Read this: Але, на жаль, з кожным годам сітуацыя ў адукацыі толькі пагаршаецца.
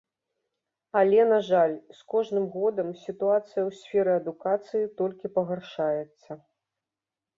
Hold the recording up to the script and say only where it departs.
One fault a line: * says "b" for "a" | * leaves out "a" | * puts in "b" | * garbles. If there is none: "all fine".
* puts in "сферы"